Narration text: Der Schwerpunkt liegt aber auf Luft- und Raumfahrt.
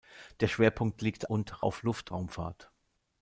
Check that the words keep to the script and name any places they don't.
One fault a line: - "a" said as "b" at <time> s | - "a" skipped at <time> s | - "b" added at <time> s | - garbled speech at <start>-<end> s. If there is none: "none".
- "aber" said as "und" at 1.3 s
- "und" skipped at 2.1 s